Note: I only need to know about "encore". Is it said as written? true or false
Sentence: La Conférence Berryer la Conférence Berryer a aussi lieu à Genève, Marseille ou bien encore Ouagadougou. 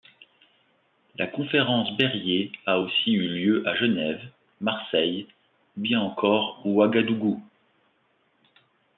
true